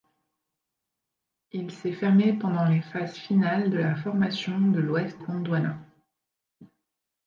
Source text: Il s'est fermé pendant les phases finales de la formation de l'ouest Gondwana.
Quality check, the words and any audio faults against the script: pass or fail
pass